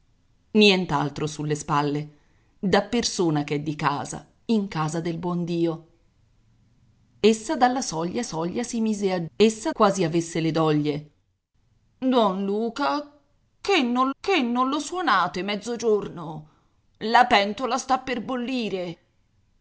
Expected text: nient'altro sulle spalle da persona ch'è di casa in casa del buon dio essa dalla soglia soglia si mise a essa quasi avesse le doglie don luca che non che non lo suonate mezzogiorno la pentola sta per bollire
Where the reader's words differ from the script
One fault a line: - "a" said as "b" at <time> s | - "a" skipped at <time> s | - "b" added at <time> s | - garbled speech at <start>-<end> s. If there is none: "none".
none